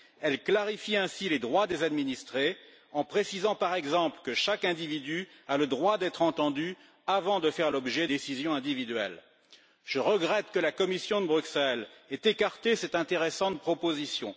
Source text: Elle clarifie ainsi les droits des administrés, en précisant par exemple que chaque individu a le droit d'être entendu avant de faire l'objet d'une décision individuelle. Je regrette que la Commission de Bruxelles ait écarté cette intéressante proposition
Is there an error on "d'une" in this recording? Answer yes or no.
yes